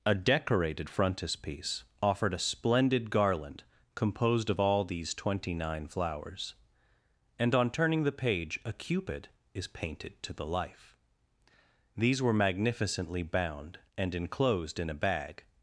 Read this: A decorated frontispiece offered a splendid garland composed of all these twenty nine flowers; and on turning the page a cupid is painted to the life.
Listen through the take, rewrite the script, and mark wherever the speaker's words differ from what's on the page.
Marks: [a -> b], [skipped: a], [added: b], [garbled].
A decorated frontispiece offered a splendid garland composed of all these twenty nine flowers; and on turning the page a cupid is painted to the life. [added: These were magnificently bound and enclosed in a bag]